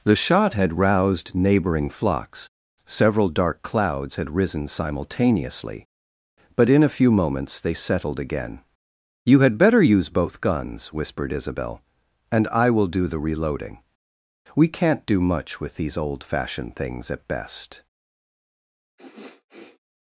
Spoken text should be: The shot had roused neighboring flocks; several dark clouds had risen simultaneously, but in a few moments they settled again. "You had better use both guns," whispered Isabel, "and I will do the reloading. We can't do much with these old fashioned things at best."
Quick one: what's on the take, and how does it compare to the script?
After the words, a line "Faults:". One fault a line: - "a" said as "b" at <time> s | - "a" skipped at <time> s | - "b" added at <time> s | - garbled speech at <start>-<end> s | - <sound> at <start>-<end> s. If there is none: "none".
The shot had roused neighboring flocks; several dark clouds had risen simultaneously, but in a few moments they settled again. "You had better use both guns," whispered Isabel, "and I will do the reloading. We can't do much with these old fashioned things at best."
Faults:
- sniff at 19.0-19.8 s